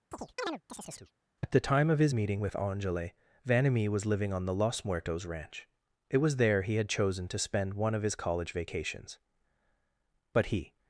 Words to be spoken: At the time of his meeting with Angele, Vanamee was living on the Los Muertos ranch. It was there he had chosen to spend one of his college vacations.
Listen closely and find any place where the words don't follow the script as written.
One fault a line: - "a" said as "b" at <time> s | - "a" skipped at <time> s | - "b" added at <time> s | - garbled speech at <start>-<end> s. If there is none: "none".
- "But he" added at 10.3 s